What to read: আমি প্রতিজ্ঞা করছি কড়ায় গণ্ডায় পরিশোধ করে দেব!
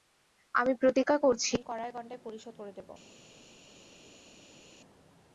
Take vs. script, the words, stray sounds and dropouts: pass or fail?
pass